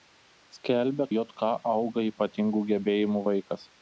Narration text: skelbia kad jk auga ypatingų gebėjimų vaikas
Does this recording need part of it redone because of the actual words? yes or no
yes